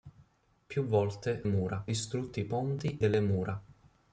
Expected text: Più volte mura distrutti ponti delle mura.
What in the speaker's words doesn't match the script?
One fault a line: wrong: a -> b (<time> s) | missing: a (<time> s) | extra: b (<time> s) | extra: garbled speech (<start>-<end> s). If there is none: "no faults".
no faults